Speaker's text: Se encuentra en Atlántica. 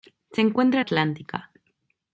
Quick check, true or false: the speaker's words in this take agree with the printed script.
true